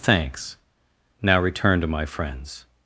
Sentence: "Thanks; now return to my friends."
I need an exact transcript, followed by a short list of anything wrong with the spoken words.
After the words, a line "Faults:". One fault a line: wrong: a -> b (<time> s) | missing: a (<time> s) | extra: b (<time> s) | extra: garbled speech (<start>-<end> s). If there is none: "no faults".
"Thanks; now return to my friends."
Faults:
no faults